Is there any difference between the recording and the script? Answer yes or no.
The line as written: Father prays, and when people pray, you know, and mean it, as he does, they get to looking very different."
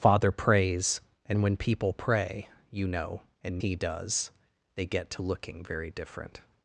yes